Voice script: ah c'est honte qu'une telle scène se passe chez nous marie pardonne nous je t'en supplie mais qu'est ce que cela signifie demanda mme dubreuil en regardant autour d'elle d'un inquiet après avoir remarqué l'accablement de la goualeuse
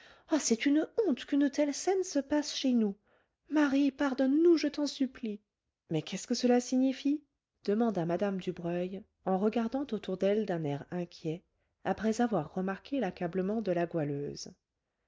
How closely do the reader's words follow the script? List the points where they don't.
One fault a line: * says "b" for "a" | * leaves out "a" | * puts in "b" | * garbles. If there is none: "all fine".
* puts in "une"
* puts in "air"